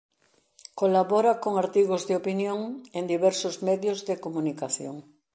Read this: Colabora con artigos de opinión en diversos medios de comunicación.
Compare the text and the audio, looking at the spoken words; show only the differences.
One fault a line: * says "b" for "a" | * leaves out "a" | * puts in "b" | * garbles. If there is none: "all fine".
all fine